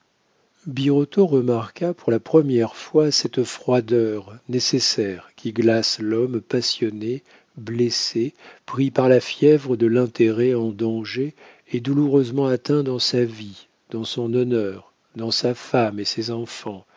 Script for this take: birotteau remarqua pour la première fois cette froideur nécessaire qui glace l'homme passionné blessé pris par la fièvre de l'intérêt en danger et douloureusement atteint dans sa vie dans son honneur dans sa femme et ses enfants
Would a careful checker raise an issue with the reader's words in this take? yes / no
no